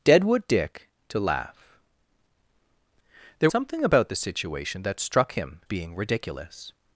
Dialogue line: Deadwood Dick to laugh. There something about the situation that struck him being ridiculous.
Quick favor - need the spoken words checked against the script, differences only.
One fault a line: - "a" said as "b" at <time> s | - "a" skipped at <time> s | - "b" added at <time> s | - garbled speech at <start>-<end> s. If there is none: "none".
none